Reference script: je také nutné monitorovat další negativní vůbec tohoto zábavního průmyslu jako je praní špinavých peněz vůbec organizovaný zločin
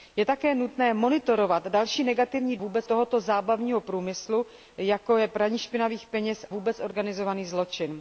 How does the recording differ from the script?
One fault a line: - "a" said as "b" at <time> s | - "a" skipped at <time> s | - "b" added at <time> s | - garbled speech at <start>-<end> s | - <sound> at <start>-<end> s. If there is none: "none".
none